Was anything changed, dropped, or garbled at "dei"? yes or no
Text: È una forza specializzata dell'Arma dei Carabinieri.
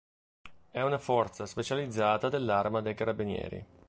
no